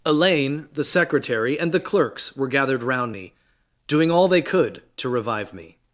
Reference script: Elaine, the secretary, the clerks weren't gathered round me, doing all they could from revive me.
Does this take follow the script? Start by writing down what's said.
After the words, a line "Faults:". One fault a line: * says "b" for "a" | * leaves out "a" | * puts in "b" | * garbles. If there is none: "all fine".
Elaine, the secretary, and the clerks were gathered round me, doing all they could to revive me.
Faults:
* puts in "and"
* says "were" for "weren't"
* says "to" for "from"